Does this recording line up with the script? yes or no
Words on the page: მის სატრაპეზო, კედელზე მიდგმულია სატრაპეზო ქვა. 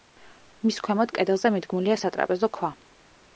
no